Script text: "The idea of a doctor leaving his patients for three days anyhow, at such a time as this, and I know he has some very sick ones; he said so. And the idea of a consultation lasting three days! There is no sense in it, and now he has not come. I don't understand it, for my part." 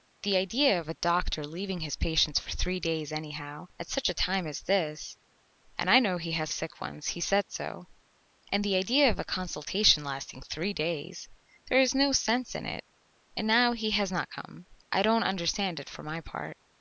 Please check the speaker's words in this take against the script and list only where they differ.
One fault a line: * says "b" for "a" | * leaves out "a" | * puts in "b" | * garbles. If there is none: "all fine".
* leaves out "some very"